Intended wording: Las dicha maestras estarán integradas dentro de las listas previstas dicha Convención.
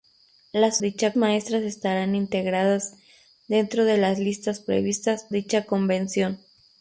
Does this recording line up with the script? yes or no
yes